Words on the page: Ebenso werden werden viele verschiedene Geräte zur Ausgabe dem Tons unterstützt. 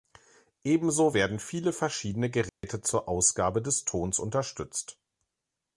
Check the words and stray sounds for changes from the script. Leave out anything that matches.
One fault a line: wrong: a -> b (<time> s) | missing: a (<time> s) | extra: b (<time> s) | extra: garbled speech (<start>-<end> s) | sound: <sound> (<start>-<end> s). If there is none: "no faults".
missing: werden (1.4 s)
sound: dropout (2.5-2.6 s)
wrong: dem -> des (3.6 s)